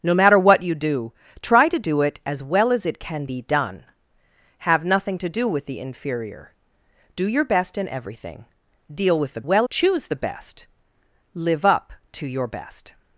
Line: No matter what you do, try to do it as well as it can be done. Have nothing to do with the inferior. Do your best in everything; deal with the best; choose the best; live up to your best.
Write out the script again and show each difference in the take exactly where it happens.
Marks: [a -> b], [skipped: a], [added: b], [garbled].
No matter what you do, try to do it as well as it can be done. Have nothing to do with the inferior. Do your best in everything; deal with the [best; -> well] choose the best; live up to your best.